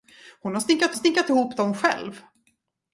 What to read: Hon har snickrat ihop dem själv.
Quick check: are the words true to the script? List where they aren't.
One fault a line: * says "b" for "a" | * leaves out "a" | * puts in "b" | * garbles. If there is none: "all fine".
* puts in "snickrat"